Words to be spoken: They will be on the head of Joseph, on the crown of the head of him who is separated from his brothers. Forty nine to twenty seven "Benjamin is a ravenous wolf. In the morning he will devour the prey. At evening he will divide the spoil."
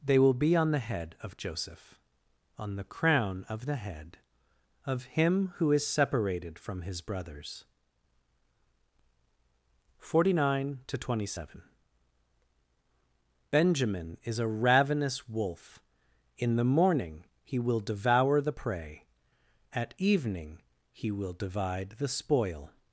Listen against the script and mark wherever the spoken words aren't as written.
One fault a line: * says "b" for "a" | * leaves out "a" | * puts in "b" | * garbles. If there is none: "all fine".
all fine